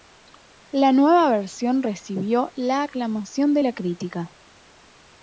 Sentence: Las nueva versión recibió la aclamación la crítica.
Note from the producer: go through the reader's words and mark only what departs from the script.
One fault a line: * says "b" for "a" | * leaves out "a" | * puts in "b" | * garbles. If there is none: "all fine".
* says "La" for "Las"
* puts in "de"